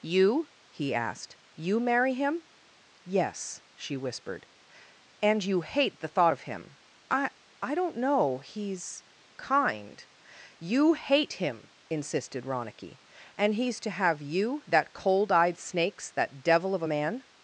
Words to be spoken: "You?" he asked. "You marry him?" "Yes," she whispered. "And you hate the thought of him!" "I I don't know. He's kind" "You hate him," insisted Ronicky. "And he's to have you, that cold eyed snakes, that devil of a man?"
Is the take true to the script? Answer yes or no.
yes